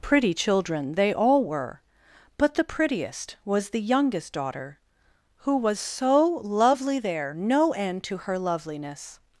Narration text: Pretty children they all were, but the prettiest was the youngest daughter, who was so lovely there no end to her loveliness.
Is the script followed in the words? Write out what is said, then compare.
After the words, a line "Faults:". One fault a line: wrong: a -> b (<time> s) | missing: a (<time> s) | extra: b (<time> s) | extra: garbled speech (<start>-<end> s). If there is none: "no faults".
Pretty children they all were, but the prettiest was the youngest daughter, who was so lovely there no end to her loveliness.
Faults:
no faults